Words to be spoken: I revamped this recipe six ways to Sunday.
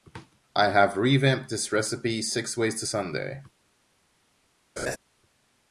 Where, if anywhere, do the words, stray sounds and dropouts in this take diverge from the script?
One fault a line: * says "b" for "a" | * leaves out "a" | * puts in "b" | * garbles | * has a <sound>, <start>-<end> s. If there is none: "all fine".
* puts in "have"
* has a laugh, 4.8-5.0 s